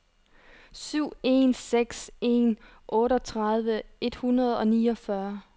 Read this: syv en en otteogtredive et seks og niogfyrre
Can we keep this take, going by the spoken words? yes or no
no